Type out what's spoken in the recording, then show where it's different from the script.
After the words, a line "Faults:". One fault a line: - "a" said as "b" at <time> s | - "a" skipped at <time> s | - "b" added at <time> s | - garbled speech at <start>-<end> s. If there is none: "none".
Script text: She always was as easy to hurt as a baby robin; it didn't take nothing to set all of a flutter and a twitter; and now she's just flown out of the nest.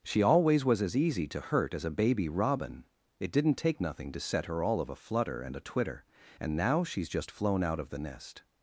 She always was as easy to hurt as a baby robin; it didn't take nothing to set her all of a flutter and a twitter; and now she's just flown out of the nest.
Faults:
- "her" added at 4.5 s